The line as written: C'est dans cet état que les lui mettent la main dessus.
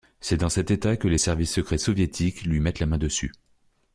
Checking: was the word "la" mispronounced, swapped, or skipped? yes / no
no